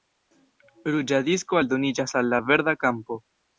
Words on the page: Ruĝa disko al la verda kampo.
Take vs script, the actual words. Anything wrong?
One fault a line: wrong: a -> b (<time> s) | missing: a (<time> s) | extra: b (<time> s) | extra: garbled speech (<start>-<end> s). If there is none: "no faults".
extra: aldoniĝas (1.6 s)